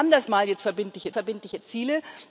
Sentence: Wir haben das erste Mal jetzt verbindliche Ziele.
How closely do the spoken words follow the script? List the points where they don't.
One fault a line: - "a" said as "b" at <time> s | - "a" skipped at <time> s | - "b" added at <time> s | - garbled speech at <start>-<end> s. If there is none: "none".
- "erste" skipped at 0.3 s
- "verbindliche" added at 1.1 s